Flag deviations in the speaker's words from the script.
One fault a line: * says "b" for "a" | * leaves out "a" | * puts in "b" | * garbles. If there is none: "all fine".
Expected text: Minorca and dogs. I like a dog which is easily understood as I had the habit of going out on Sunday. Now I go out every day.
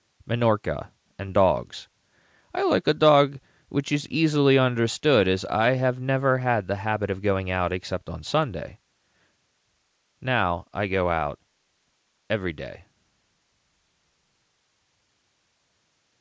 * puts in "have never"
* puts in "except"